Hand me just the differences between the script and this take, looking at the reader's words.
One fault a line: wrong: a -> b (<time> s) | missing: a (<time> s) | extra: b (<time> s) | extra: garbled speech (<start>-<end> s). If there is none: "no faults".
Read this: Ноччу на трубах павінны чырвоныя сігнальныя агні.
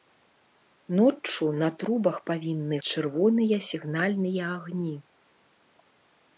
no faults